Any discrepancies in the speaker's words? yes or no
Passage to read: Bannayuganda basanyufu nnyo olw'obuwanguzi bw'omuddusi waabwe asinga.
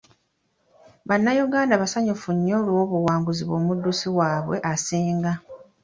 no